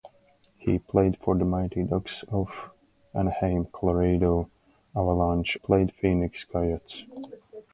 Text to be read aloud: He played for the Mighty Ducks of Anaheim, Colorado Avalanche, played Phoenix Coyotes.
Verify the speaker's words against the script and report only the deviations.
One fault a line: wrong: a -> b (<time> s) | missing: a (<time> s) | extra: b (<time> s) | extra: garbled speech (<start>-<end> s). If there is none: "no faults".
no faults